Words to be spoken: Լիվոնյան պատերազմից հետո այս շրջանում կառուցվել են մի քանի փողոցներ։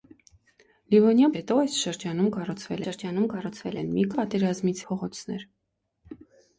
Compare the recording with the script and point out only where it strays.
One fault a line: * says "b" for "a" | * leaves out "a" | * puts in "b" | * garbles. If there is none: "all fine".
* leaves out "պատերազմից"
* puts in "շրջանում կառուցվել"
* says "պատերազմից" for "քանի"